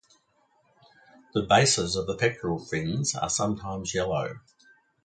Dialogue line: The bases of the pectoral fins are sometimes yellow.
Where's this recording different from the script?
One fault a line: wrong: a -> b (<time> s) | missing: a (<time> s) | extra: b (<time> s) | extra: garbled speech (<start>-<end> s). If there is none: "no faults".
no faults